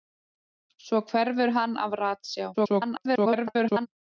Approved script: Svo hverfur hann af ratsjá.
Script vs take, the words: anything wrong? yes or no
yes